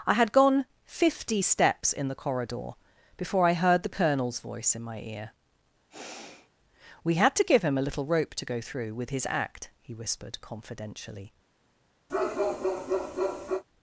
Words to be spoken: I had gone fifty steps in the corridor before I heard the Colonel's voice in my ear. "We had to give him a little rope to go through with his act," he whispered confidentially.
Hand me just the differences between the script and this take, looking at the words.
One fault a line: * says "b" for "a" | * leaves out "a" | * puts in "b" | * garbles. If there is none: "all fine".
all fine